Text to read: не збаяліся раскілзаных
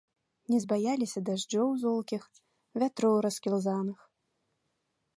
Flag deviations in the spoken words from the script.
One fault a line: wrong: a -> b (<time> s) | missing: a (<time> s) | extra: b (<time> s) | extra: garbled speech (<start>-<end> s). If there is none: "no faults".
extra: дажджоў золкіх вятроў (1.3 s)